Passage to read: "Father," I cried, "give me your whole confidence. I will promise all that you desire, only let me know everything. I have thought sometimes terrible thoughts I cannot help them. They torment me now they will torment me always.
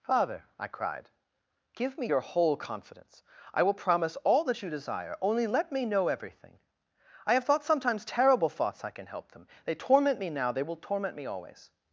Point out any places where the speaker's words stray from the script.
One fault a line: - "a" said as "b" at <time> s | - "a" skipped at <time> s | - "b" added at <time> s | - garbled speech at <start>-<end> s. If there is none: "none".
- "cannot" said as "can" at 8.9 s